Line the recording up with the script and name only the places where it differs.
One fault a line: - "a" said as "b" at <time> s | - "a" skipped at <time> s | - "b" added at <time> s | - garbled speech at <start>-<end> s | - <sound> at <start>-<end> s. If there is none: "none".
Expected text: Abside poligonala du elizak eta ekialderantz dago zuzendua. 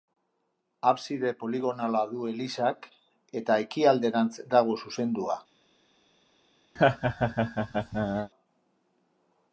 - laugh at 6.8-8.3 s